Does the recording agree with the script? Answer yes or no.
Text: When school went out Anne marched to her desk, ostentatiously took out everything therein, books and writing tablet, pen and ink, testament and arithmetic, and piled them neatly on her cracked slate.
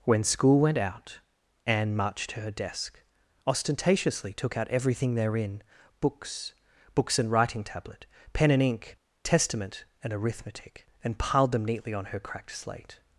no